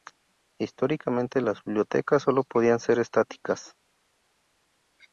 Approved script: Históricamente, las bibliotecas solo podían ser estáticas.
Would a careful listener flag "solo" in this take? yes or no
no